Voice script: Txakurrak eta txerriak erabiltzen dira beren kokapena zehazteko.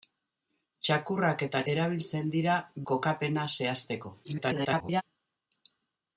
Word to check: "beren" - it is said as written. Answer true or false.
false